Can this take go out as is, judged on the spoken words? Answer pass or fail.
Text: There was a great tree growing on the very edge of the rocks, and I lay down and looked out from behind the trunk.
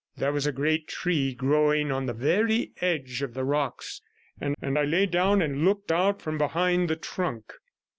fail